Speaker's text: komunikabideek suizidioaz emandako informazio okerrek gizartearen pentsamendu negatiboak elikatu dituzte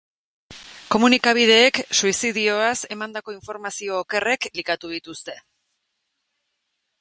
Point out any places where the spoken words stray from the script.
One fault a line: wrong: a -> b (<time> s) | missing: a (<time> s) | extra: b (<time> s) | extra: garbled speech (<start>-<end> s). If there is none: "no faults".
missing: gizartearen pentsamendu negatiboak (4.5 s)